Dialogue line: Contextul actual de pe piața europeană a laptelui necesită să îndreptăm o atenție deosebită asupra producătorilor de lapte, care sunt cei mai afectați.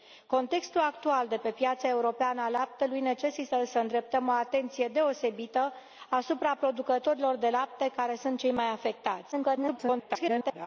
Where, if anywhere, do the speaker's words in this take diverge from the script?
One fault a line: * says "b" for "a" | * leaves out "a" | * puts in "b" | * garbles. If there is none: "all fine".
* garbles